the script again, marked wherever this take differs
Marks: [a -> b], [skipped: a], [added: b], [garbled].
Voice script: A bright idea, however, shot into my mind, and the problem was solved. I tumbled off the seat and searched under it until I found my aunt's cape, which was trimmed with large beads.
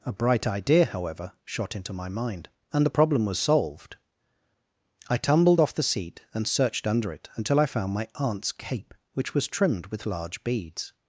A bright idea, however, shot into my mind, and the problem was solved. I tumbled off the seat and searched under it until I found my aunt's cape, which was trimmed with large beads.